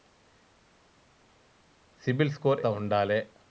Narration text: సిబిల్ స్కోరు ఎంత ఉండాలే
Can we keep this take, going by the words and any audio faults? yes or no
no